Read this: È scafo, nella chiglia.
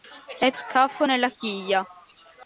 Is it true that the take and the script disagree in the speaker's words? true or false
false